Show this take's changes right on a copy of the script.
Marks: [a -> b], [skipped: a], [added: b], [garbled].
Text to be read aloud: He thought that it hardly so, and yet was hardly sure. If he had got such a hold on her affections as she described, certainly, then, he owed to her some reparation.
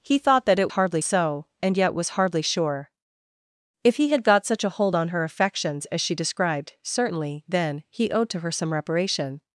He thought that it hardly so, and yet was hardly sure. If he had got such a hold on her affections as she described, certainly, then, he owed to her some reparation.